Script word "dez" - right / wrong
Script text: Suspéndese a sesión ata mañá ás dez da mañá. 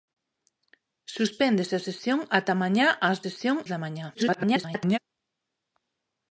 wrong